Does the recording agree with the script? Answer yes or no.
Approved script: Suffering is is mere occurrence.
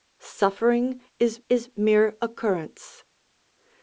yes